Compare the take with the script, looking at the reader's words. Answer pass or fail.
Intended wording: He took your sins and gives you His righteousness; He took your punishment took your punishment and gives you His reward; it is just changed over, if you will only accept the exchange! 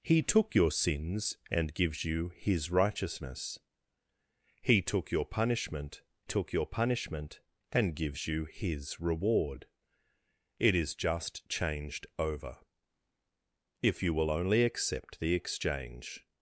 pass